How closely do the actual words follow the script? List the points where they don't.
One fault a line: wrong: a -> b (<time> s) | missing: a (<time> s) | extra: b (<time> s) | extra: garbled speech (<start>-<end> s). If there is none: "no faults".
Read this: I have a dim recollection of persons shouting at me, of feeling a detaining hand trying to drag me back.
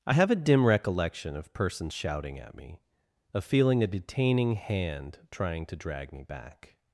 no faults